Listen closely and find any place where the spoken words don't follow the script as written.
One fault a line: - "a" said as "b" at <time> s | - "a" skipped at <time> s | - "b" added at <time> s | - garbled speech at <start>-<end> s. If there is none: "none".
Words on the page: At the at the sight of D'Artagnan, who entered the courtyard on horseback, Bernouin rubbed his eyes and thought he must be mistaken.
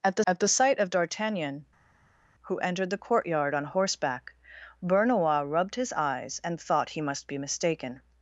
none